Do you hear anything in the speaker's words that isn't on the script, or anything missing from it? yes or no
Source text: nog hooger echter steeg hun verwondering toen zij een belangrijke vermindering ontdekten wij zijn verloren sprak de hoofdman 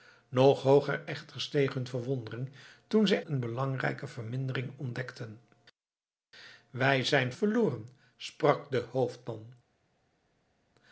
no